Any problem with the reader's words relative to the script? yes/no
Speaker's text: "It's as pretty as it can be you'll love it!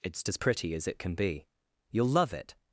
no